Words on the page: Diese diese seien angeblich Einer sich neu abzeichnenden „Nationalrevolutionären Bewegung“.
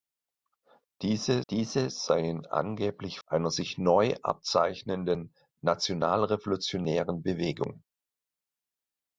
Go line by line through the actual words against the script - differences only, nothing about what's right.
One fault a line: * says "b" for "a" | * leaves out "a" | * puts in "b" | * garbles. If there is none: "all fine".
all fine